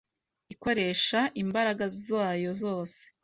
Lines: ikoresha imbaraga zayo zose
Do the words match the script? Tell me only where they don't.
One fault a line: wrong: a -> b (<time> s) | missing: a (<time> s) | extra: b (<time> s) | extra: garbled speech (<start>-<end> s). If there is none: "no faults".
no faults